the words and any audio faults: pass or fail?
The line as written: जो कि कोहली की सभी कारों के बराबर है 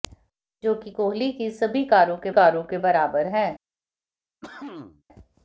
fail